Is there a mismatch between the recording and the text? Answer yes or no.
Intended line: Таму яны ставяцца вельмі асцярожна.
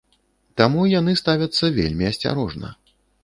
no